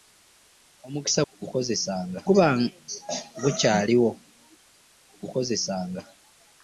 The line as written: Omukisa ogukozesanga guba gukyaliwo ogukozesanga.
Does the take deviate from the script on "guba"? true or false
false